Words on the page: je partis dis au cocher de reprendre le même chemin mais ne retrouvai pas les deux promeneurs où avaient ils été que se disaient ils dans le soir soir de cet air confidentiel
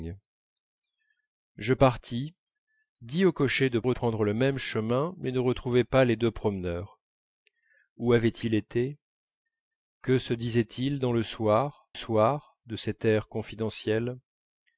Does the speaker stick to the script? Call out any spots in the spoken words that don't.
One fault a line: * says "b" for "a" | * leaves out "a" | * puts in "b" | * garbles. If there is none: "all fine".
all fine